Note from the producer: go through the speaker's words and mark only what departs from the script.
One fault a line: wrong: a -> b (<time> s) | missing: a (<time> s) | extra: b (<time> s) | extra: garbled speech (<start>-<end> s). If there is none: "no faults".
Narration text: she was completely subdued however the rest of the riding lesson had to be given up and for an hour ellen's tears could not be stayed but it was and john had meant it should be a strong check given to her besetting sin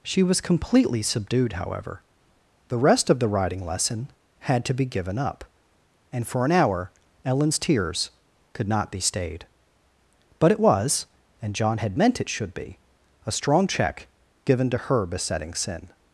no faults